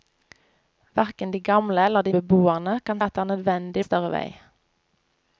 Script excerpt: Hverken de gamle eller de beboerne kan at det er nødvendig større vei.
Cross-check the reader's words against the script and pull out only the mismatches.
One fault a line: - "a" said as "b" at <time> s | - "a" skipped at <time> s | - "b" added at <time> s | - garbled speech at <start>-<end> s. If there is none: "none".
none